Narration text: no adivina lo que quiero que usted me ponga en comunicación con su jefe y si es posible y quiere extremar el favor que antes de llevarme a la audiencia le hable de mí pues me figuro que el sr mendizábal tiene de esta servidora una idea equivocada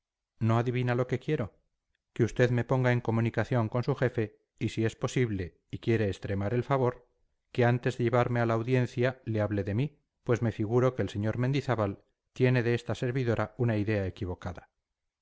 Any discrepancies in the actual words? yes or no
no